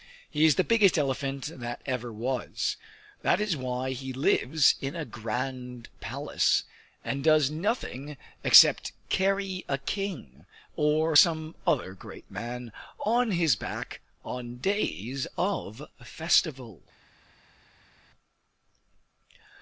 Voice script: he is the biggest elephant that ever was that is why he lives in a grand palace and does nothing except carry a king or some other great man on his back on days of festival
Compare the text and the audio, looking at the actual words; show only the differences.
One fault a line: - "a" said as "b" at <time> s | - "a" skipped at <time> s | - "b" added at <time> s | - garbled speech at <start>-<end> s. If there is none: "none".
none